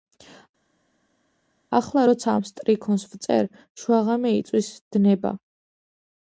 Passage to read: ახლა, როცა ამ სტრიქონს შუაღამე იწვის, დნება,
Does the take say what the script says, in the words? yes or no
no